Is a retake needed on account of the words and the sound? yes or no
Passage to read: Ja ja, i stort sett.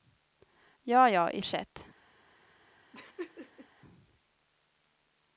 yes